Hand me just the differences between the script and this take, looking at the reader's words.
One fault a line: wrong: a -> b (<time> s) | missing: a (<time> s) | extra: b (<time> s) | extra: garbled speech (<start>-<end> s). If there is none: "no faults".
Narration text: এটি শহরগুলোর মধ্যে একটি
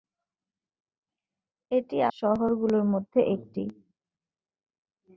no faults